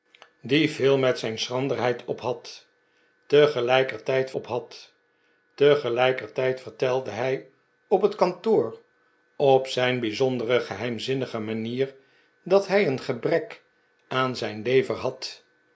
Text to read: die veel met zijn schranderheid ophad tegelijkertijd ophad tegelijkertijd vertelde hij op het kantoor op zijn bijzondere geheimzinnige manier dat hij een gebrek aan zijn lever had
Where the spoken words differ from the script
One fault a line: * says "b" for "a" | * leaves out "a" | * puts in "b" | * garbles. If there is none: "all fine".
all fine